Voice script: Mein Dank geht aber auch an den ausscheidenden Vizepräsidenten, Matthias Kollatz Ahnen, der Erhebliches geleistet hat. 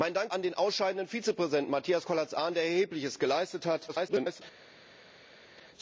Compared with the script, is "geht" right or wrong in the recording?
wrong